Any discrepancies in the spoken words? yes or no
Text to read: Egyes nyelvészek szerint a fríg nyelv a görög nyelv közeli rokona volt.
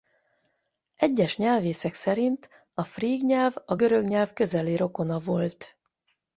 no